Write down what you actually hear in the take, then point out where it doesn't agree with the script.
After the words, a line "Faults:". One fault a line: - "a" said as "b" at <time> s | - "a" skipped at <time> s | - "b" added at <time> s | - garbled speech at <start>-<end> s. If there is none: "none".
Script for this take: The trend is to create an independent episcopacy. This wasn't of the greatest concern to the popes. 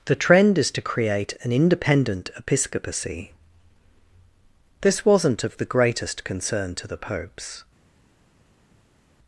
The trend is to create an independent episcopacy. This wasn't of the greatest concern to the popes.
Faults:
none